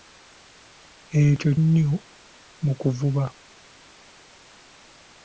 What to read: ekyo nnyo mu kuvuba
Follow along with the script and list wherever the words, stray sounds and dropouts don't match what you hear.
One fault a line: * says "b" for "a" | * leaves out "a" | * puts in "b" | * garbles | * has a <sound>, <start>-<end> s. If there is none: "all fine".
all fine